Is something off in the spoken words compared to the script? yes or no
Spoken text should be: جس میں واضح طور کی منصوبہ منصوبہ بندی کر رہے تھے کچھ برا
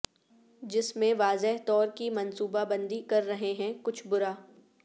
yes